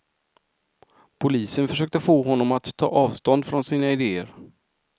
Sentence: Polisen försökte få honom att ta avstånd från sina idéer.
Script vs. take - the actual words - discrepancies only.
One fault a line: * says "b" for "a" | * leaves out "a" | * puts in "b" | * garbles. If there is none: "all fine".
all fine